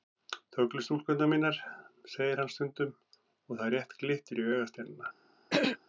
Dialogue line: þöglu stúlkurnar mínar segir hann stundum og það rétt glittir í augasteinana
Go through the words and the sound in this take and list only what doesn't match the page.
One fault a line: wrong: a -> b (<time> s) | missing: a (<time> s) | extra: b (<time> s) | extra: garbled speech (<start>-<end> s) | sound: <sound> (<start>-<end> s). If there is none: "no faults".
sound: throat clearing (5.5-5.8 s)